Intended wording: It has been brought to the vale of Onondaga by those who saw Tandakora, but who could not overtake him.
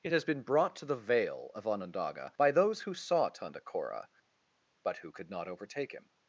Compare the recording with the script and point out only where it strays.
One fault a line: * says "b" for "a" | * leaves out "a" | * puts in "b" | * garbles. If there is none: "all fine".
all fine